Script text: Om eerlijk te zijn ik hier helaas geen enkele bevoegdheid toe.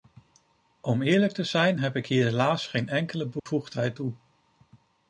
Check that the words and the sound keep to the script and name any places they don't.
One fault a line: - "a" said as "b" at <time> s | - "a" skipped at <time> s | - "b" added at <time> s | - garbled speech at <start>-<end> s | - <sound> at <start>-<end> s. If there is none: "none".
- "heb" added at 1.8 s
- dropout at 3.4-3.5 s